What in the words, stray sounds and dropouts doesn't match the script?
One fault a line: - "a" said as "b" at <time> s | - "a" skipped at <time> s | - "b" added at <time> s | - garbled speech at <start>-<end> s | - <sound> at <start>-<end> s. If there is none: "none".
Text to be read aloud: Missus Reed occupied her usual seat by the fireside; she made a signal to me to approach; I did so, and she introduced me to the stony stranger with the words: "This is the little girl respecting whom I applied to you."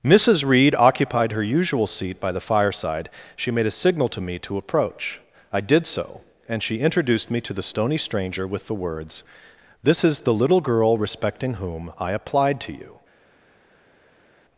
none